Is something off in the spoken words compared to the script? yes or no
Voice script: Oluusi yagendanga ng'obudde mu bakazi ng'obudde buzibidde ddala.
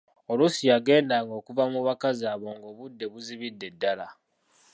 yes